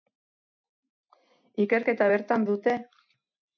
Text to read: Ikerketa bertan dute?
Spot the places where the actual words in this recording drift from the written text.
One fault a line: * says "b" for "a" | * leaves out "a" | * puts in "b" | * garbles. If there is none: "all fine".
all fine